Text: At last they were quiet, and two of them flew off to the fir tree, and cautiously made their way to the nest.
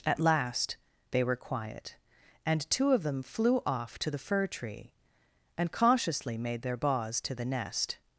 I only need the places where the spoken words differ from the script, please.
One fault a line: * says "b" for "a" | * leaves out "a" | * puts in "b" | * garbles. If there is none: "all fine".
* says "baws" for "way"